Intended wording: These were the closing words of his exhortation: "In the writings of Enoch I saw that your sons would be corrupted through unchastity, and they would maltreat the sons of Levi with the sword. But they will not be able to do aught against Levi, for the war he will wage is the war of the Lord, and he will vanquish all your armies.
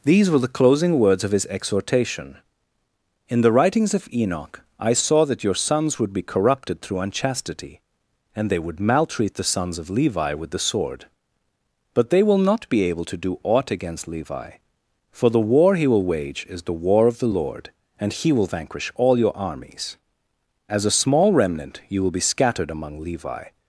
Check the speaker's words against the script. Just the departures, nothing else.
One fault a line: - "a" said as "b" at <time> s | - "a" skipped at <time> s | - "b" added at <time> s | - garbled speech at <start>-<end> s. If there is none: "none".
- "As a small remnant you will be scattered among Levi" added at 20.7 s